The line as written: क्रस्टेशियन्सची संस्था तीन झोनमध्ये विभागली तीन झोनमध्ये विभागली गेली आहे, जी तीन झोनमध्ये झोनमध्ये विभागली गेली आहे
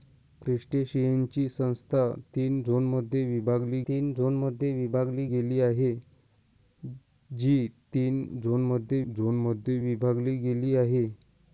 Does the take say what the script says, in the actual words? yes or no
yes